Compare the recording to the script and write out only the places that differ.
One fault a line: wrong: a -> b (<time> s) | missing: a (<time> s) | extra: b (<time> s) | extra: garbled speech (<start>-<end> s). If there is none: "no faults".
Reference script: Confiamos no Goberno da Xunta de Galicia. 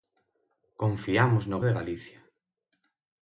missing: Goberno da Xunta (1.6 s)